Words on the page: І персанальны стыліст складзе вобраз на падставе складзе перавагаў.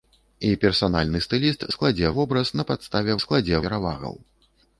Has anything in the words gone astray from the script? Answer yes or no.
no